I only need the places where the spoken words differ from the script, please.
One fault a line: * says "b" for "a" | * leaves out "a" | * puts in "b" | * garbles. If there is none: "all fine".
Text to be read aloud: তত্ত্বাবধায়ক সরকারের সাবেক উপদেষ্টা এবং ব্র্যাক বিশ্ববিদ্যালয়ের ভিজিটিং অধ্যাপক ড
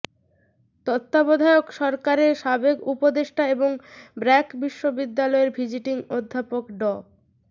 all fine